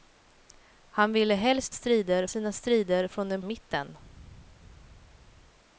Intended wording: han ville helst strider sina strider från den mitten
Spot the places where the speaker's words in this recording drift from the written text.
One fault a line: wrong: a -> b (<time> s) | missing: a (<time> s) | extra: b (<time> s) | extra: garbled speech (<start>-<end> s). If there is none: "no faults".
no faults